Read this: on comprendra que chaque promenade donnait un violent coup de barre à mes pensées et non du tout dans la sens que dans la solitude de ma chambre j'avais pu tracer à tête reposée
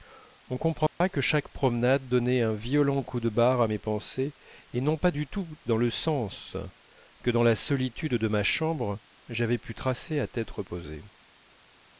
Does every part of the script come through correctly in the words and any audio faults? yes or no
no